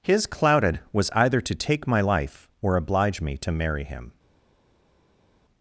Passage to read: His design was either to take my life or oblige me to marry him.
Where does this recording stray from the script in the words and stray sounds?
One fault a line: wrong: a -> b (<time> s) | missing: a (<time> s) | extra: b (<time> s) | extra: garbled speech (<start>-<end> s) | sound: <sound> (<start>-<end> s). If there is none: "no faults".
wrong: design -> clouded (0.2 s)